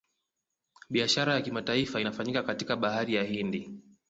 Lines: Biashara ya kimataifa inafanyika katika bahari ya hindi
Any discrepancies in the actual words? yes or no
no